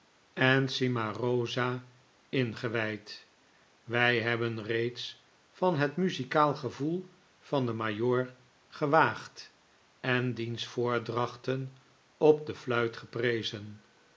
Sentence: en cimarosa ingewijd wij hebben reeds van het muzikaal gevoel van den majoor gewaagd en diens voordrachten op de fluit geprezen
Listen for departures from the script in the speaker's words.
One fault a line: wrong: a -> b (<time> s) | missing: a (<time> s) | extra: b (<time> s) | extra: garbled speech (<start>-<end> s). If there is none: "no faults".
no faults